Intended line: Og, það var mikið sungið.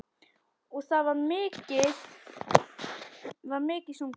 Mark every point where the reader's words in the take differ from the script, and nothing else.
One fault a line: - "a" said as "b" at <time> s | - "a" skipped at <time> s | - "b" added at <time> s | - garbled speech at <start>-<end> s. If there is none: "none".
none